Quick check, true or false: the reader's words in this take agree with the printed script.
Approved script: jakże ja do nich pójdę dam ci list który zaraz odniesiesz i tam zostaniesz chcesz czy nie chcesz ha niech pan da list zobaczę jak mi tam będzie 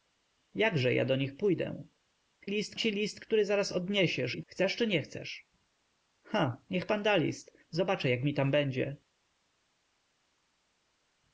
false